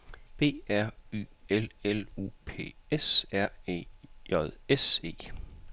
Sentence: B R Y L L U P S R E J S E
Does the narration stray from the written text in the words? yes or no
no